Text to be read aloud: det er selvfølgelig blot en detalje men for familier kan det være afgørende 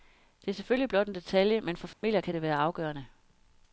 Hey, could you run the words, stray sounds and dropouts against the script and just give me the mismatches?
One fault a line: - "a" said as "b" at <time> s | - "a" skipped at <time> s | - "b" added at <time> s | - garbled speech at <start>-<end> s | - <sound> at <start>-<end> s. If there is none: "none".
- dropout at 1.9-2.0 s